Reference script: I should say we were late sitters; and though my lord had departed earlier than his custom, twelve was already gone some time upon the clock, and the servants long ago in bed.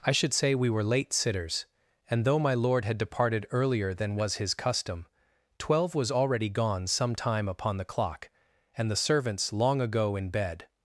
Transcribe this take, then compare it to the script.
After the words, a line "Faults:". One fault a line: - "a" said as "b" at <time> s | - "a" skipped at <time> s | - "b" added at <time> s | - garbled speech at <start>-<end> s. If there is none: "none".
I should say we were late sitters; and though my lord had departed earlier than was his custom, twelve was already gone some time upon the clock, and the servants long ago in bed.
Faults:
- "was" added at 4.2 s